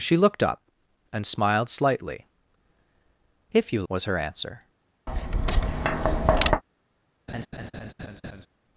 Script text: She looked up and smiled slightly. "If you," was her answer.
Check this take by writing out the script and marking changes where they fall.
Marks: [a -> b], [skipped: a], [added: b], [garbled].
She looked up and smiled slightly. "If you," was her answer.